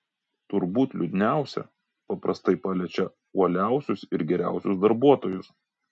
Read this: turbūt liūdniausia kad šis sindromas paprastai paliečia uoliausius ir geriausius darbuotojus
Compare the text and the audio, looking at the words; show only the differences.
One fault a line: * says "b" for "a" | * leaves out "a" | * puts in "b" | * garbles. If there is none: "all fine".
* leaves out "kad šis sindromas"